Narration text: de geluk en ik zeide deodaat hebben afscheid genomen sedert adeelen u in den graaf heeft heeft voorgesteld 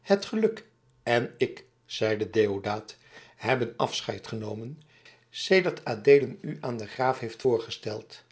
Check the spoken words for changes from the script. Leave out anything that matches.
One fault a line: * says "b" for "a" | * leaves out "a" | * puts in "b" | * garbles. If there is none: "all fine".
* says "het" for "de"
* says "aan" for "in"
* leaves out "heeft"